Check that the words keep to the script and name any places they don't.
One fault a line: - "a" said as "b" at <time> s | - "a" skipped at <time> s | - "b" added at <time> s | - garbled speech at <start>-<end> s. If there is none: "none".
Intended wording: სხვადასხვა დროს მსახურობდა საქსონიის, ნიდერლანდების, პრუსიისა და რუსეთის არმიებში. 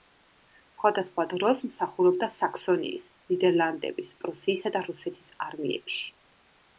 none